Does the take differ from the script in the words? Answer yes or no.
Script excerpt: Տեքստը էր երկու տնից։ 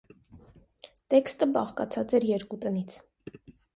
yes